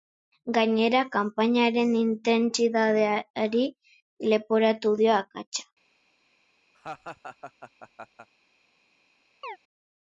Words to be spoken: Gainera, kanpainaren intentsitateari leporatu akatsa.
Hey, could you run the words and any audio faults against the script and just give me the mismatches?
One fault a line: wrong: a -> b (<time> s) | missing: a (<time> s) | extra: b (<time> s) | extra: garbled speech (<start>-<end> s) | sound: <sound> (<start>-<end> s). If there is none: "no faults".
extra: dio (5.0 s)
sound: laugh (6.7-8.3 s)
sound: chirp (9.4-9.6 s)